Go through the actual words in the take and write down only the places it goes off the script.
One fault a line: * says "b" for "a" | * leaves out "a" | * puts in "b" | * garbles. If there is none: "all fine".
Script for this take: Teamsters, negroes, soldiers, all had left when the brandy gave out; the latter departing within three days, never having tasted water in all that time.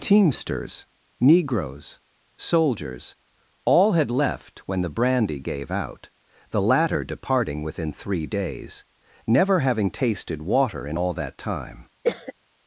all fine